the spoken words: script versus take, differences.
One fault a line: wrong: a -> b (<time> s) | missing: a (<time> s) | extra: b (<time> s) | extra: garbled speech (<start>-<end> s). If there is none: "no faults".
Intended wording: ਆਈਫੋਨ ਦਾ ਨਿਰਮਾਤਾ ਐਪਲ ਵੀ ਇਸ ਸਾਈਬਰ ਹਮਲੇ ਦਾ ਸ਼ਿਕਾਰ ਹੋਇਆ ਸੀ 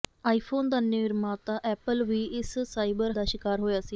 missing: ਹਮਲੇ (3.1 s)